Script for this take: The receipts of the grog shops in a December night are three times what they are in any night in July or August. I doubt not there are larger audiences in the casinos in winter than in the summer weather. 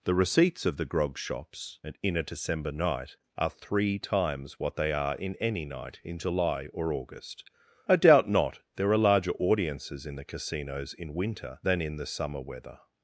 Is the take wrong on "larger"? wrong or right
right